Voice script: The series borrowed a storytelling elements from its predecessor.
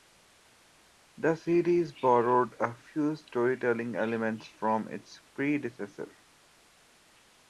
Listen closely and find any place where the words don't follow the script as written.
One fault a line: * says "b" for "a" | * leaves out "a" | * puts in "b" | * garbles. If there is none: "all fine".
* puts in "few"